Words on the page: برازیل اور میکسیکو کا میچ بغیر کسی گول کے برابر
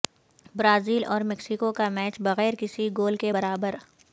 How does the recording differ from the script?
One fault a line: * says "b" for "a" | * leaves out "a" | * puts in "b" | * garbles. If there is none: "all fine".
all fine